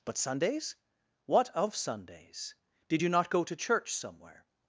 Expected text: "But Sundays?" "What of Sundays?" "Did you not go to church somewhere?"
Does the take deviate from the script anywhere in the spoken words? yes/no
no